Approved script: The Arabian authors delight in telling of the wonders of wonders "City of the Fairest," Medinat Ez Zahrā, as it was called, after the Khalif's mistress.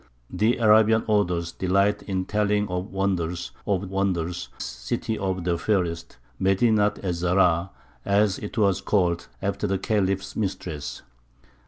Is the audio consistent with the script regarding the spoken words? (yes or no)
yes